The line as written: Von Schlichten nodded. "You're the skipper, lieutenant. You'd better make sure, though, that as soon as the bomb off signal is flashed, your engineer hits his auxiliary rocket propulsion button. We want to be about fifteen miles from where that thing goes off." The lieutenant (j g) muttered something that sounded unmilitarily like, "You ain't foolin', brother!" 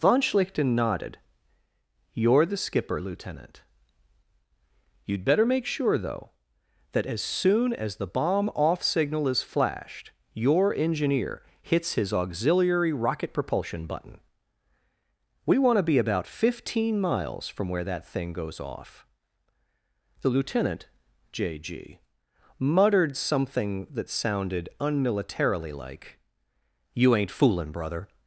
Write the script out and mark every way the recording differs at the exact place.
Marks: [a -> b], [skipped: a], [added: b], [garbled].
Von Schlichten nodded. "You're the skipper, lieutenant. You'd better make sure, though, that as soon as the bomb off signal is flashed, your engineer hits his auxiliary rocket propulsion button. We want to be about fifteen miles from where that thing goes off." The lieutenant (j g) muttered something that sounded unmilitarily like, "You ain't foolin', brother!"